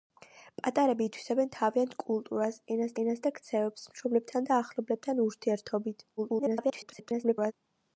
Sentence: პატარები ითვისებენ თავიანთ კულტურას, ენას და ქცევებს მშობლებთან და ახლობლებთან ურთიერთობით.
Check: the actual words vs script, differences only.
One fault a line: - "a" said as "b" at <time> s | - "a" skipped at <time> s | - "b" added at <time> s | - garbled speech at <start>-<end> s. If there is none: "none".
- "ენას" added at 3.0 s
- garbled speech at 6.2-7.5 s